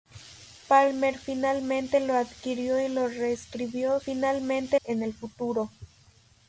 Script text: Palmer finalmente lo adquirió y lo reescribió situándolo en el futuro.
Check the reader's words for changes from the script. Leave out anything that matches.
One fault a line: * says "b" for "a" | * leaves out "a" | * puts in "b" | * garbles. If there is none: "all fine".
* says "finalmente" for "situándolo"